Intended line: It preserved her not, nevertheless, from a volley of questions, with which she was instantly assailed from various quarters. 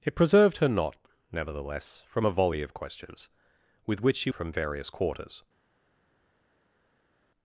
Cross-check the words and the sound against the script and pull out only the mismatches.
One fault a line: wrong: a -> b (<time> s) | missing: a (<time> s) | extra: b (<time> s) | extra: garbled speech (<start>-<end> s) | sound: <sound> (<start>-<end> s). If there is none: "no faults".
missing: was instantly assailed (4.3 s)